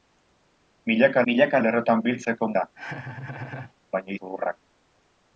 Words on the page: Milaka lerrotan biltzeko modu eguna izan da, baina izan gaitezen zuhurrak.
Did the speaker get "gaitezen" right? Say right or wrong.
wrong